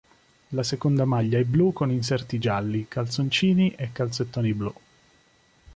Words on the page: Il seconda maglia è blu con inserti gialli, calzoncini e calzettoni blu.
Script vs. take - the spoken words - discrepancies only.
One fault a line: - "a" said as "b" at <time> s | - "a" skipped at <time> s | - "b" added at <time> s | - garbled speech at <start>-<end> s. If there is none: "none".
- "Il" said as "La" at 0.5 s